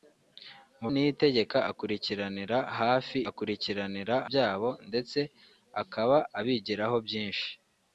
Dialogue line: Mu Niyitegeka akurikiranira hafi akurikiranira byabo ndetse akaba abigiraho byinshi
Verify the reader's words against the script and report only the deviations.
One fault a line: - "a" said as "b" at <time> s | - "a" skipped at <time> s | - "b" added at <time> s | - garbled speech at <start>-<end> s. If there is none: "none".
none